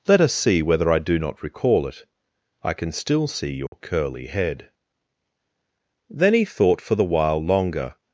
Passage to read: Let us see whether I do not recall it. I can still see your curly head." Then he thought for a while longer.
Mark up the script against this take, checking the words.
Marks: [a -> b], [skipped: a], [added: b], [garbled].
Let us see whether I do not recall it. I can still see your curly head." Then he thought for [a -> the] while longer.